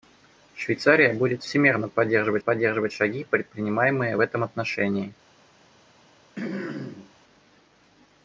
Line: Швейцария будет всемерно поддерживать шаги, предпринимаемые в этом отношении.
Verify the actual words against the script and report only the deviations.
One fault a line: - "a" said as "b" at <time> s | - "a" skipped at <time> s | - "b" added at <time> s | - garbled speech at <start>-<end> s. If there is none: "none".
- "поддерживать" added at 2.4 s